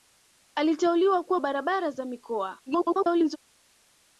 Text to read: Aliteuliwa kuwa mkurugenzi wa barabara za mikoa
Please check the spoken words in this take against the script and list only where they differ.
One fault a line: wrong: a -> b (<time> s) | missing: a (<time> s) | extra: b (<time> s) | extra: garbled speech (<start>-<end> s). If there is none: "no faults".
missing: mkurugenzi (1.4 s)
extra: garbled speech (2.7-3.4 s)